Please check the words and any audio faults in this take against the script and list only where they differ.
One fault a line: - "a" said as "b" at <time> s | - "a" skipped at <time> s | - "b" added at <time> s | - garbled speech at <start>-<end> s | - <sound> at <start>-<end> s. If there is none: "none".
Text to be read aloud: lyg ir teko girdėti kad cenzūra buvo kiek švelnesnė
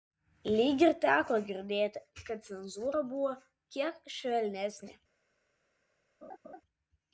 - laugh at 6.2-6.6 s